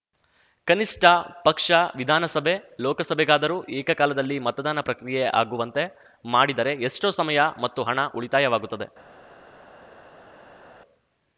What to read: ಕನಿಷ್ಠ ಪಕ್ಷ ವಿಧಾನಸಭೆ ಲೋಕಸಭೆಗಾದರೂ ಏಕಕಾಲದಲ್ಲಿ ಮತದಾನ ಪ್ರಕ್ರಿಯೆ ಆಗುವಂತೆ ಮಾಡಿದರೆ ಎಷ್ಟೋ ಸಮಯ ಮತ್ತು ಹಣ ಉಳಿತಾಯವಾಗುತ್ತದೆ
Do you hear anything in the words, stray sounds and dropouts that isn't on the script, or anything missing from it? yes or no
no